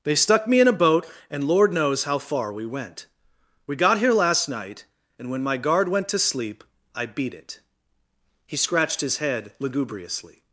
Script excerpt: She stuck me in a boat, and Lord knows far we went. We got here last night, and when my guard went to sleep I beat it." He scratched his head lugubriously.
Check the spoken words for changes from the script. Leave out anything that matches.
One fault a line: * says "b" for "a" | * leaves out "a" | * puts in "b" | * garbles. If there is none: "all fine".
* says "They" for "She"
* puts in "how"